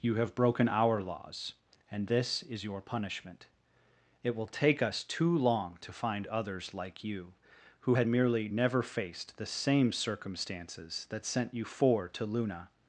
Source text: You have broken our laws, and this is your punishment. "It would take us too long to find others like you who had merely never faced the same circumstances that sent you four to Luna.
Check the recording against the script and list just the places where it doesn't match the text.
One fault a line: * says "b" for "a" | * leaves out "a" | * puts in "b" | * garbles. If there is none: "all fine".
* says "will" for "would"